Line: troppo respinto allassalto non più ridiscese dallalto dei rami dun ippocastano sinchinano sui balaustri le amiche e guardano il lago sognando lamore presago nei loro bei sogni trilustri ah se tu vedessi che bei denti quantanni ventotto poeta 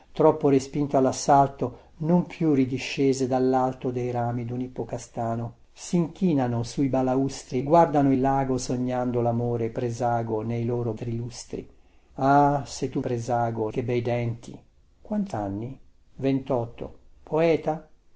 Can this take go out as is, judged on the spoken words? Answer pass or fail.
fail